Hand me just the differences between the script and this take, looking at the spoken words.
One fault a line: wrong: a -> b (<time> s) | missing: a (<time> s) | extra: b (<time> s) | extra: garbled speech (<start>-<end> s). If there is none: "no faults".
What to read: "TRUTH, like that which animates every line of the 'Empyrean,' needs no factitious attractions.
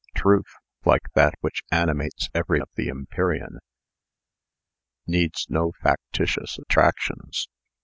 missing: line (2.6 s)